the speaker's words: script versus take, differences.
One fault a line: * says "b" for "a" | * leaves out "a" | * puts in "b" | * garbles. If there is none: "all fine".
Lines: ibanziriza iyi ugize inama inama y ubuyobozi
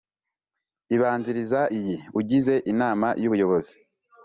* leaves out "inama"